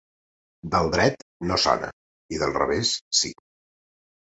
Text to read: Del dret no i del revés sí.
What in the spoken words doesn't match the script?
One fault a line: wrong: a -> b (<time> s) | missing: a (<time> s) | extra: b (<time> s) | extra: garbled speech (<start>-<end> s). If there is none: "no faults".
extra: sona (1.6 s)